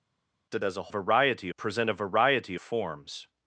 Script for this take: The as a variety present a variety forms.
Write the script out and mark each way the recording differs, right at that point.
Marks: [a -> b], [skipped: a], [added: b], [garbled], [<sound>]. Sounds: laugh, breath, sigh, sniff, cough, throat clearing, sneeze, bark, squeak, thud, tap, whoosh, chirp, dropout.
The as a variety present a variety forms.